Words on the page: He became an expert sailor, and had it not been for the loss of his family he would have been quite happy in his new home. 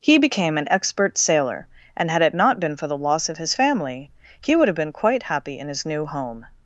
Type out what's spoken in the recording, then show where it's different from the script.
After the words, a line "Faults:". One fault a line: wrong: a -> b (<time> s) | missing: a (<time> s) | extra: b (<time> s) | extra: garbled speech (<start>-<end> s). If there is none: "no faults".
He became an expert sailor, and had it not been for the loss of his family he would have been quite happy in his new home.
Faults:
no faults